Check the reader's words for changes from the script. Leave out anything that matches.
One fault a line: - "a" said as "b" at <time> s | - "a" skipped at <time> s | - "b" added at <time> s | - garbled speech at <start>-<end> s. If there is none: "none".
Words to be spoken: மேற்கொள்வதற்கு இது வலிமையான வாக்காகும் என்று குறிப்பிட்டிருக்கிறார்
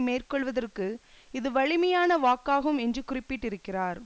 none